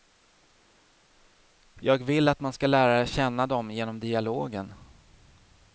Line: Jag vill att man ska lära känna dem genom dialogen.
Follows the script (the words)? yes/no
yes